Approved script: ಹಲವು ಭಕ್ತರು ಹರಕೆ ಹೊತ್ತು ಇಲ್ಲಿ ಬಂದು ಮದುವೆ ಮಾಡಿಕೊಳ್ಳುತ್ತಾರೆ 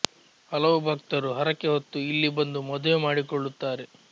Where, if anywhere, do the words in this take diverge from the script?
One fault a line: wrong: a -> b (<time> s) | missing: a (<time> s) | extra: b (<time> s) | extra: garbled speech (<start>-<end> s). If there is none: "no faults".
no faults